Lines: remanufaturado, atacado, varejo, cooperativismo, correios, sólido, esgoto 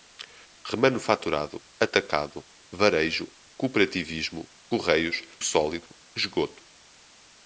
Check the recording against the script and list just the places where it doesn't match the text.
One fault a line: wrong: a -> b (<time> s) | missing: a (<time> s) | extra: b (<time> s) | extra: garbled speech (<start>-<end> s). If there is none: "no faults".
no faults